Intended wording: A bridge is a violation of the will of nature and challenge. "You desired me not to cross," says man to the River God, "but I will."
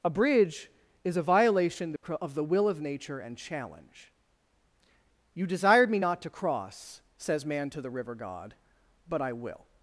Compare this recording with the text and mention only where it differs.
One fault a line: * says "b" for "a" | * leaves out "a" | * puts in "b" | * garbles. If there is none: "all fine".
all fine